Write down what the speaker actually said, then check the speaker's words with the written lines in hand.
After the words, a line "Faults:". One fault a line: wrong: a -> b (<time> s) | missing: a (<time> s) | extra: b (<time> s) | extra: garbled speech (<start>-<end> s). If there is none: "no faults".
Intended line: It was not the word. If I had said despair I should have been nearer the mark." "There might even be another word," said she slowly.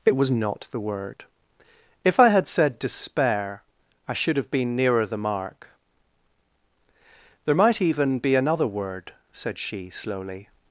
It was not the word. If I had said despair I should have been nearer the mark." "There might even be another word," said she slowly.
Faults:
no faults